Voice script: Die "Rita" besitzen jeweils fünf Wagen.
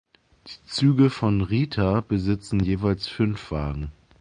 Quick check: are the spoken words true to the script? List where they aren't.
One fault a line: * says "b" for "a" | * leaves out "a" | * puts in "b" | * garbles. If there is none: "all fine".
* puts in "Züge von"